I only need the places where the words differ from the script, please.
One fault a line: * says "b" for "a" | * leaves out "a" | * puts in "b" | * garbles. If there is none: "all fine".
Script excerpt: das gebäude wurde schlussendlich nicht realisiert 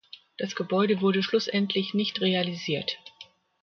all fine